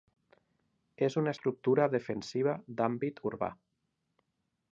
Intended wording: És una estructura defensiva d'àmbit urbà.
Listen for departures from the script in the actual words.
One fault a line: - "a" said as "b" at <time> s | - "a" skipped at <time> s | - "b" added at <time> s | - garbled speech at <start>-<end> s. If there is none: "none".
none